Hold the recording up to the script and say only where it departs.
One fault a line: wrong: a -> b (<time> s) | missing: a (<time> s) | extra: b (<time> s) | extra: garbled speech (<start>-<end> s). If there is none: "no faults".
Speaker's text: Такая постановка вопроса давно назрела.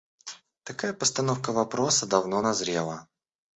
no faults